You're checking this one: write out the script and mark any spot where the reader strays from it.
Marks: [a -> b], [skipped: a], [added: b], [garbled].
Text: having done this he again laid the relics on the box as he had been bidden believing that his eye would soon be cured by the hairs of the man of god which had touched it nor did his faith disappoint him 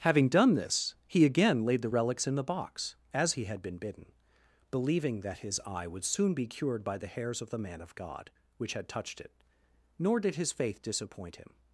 having done this he again laid the relics [on -> in] the box as he had been bidden believing that his eye would soon be cured by the hairs of the man of god which had touched it nor did his faith disappoint him